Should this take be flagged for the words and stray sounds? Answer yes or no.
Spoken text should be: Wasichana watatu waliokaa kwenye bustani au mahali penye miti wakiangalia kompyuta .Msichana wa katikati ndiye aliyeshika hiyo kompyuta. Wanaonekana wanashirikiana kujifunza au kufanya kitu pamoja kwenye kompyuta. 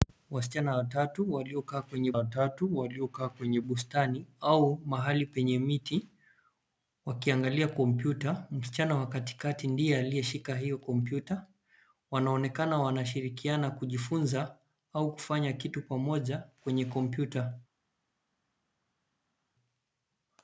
yes